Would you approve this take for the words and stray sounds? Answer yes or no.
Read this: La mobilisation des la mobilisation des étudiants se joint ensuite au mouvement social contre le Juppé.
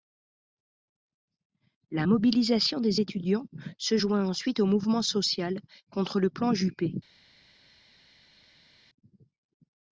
no